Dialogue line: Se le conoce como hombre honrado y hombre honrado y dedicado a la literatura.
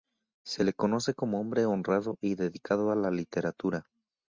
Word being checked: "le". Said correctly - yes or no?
yes